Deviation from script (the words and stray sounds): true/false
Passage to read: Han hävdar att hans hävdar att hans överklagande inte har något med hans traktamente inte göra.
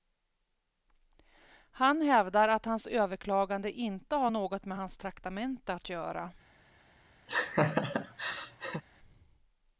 true